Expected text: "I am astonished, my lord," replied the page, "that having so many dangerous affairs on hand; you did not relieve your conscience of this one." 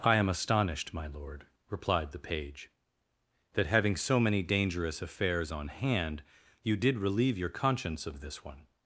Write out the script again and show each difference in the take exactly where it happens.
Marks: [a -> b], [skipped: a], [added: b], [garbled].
"I am astonished, my lord," replied the page, "that having so many dangerous affairs on hand; you did [skipped: not] relieve your conscience of this one."